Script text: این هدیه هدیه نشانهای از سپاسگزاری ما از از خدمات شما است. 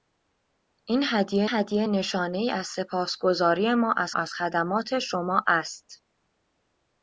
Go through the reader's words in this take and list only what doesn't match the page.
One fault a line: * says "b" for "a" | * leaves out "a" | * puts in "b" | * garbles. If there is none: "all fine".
all fine